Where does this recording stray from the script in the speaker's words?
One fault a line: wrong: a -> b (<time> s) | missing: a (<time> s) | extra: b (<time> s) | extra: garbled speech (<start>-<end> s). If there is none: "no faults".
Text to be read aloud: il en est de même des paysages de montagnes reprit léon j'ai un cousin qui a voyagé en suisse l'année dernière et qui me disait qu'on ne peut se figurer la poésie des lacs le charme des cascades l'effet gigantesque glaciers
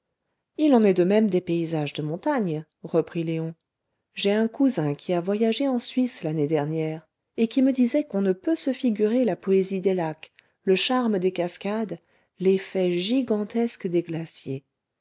extra: des (13.8 s)